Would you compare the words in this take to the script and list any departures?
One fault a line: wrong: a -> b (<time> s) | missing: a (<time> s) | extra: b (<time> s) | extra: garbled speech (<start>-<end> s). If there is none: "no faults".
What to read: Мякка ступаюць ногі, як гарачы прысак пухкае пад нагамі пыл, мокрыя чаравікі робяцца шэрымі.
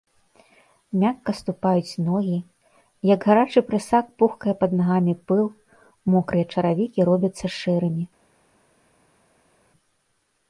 no faults